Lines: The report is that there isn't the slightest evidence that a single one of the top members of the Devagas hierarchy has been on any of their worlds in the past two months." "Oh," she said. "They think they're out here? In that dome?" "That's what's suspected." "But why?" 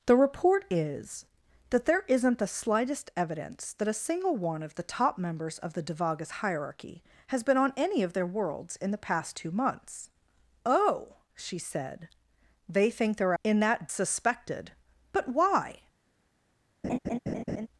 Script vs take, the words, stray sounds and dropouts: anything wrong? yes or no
yes